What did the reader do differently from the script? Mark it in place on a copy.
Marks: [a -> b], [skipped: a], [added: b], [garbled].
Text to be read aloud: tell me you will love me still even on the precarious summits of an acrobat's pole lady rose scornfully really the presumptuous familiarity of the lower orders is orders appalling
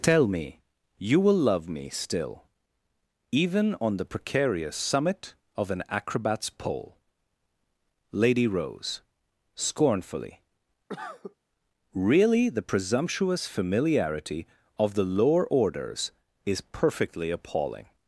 tell me you will love me still even on the precarious [summits -> summit] of an acrobat's pole lady rose scornfully really the presumptuous familiarity of the lower orders is [orders -> perfectly] appalling